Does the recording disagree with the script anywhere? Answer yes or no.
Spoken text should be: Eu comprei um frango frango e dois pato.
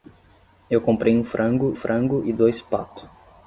no